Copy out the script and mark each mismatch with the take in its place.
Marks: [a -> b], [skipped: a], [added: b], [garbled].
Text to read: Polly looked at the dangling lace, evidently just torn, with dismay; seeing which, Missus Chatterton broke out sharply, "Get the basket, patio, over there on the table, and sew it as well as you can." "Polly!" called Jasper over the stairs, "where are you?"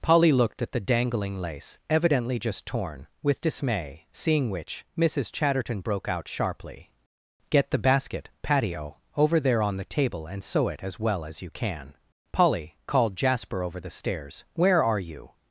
Polly looked at the dangling lace, evidently just torn, with dismay; seeing which, Missus Chatterton broke out sharply, "Get the basket, patio, over there on the table, and sew it as well as you can." "Polly!" called Jasper over the stairs, "where are you?"